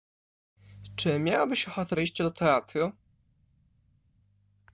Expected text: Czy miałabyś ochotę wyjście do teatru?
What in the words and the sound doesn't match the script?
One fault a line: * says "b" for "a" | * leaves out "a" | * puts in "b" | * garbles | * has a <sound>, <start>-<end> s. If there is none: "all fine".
all fine